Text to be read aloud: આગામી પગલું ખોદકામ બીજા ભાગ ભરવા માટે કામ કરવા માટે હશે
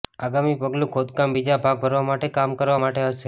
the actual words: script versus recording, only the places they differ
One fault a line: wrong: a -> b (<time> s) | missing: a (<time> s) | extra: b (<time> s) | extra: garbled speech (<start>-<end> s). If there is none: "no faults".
no faults